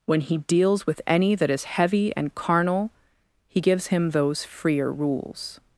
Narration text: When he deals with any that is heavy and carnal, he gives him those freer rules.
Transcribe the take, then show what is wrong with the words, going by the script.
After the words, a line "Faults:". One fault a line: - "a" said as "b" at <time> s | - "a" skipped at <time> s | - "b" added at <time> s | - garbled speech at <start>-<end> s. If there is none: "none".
When he deals with any that is heavy and carnal, he gives him those freer rules.
Faults:
none